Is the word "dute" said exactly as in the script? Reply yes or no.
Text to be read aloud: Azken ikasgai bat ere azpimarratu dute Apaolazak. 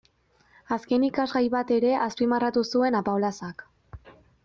no